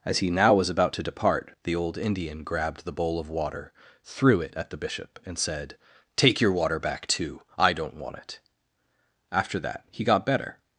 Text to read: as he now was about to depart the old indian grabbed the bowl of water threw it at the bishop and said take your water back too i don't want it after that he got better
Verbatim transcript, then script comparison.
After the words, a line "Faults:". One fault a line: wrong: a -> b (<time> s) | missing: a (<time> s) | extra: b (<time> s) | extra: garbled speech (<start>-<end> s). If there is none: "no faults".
as he now was about to depart the old indian grabbed the bowl of water threw it at the bishop and said take your water back too i don't want it after that he got better
Faults:
no faults